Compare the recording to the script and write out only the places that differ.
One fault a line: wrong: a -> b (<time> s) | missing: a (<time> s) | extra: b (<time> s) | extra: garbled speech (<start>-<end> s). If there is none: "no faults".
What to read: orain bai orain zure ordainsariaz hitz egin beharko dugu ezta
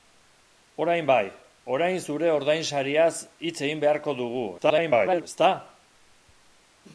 extra: garbled speech (4.6-5.2 s)